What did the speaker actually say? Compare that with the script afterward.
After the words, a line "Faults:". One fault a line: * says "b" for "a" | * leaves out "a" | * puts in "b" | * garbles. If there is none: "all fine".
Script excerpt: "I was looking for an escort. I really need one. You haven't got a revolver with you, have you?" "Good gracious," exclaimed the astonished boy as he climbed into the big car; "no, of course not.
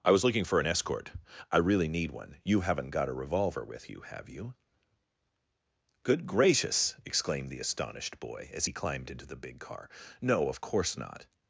"I was looking for an escort. I really need one. You haven't got a revolver with you, have you?" "Good gracious," exclaimed the astonished boy as he climbed into the big car; "no, of course not.
Faults:
all fine